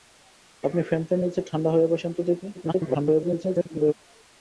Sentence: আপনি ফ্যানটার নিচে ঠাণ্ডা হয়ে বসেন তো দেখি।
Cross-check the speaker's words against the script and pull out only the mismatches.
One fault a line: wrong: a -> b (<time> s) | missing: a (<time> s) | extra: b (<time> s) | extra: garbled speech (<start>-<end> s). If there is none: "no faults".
extra: garbled speech (2.5-3.9 s)